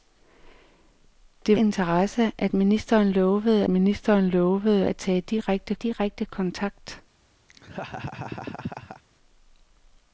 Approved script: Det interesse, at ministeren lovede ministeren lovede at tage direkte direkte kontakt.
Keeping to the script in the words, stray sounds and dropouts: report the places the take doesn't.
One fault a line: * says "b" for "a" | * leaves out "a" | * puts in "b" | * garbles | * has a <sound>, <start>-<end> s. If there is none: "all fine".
* has a laugh, 7.5-9.0 s